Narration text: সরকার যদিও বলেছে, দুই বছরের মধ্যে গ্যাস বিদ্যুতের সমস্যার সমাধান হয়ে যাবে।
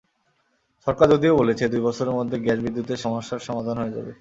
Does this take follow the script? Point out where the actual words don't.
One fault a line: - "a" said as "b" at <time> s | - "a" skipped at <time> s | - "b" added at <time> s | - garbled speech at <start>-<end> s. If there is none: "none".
none